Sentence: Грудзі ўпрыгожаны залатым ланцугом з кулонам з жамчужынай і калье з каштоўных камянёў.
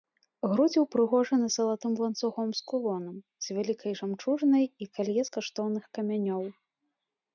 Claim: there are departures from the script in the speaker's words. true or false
true